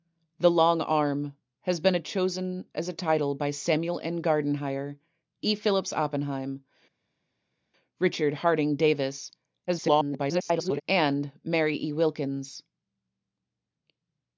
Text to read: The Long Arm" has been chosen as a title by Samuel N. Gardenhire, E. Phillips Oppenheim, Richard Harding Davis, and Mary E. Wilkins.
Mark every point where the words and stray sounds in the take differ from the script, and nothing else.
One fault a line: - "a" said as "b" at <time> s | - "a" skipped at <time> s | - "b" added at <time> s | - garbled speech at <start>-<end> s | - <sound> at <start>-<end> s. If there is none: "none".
- garbled speech at 9.7-10.8 s